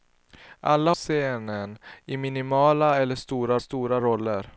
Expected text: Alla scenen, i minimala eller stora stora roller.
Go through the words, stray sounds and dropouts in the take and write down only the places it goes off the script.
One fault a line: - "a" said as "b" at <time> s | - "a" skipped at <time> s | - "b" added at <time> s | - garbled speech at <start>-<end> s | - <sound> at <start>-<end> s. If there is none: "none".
none